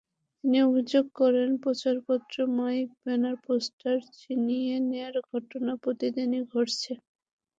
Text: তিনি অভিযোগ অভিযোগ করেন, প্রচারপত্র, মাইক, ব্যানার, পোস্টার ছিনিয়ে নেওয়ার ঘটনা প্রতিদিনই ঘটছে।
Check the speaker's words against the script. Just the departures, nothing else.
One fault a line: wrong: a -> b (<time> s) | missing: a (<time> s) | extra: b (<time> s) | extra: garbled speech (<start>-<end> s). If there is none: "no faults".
missing: অভিযোগ (1.1 s)